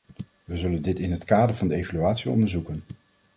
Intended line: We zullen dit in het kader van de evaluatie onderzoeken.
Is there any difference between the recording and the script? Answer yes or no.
no